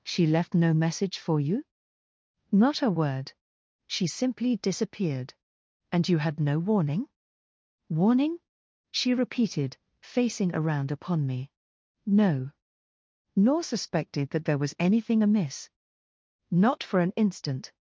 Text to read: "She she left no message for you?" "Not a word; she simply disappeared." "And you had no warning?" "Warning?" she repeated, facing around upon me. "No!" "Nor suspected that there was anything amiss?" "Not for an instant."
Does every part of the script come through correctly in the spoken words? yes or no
no